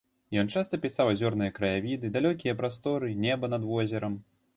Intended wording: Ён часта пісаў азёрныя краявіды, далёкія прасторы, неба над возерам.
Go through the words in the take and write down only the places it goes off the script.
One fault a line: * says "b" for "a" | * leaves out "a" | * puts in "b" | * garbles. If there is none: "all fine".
all fine